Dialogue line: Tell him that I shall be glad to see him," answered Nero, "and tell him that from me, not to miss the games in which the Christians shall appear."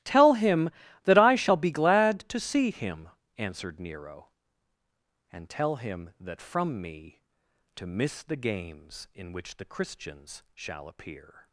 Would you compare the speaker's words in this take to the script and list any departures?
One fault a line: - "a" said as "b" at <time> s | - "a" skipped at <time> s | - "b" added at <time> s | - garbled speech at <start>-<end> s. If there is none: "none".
- "not" skipped at 7.2 s